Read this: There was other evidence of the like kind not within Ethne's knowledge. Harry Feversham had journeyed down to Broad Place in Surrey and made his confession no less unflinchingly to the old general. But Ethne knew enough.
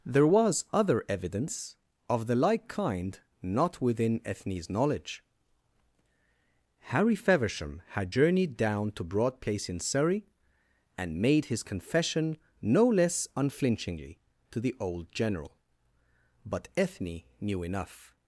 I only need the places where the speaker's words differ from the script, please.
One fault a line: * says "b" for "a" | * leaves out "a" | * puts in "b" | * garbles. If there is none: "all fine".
all fine